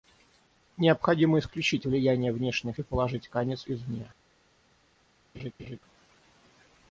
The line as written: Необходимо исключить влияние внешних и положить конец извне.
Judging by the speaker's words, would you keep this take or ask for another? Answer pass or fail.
pass